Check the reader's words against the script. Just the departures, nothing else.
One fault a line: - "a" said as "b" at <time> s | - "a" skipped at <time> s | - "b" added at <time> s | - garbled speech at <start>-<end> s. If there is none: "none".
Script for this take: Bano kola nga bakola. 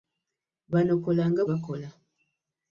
none